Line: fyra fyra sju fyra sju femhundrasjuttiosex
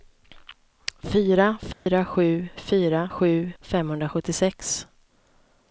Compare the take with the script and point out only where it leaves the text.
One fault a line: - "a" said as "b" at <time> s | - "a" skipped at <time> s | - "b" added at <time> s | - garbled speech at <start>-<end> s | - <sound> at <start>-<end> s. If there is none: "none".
- dropout at 1.7-1.9 s